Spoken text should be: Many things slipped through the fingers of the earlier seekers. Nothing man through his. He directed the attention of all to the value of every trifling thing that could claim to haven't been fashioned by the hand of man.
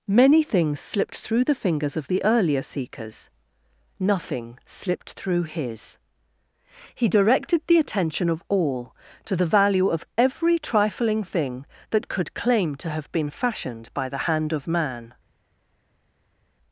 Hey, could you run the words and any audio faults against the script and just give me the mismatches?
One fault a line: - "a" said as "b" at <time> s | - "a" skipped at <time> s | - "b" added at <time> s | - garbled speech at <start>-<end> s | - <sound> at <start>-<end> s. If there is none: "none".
- "man" said as "slipped" at 4.7 s
- "haven't" said as "have" at 12.9 s